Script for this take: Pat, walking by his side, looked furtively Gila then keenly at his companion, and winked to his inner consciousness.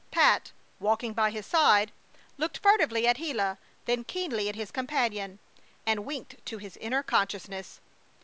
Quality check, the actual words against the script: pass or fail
fail